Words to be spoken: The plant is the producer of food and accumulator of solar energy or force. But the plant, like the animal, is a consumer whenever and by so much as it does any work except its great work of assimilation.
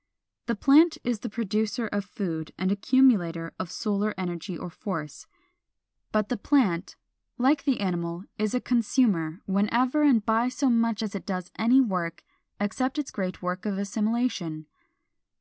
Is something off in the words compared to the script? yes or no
no